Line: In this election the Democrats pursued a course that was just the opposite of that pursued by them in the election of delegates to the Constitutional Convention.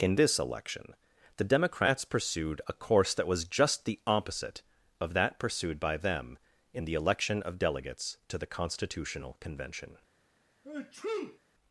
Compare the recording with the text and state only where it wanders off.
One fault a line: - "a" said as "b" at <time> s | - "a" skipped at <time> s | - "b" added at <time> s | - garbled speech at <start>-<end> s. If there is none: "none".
none